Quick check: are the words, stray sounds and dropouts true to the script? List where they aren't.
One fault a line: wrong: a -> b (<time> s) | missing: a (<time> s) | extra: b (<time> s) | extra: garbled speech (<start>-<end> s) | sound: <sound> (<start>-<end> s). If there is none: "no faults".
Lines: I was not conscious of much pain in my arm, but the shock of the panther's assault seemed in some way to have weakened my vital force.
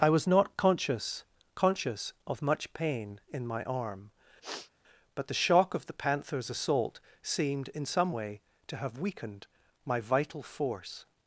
extra: conscious (1.5 s)
sound: sniff (4.4-4.7 s)